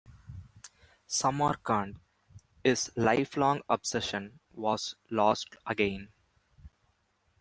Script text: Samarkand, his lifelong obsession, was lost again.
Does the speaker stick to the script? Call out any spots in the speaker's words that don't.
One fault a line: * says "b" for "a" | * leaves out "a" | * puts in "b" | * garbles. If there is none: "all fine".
all fine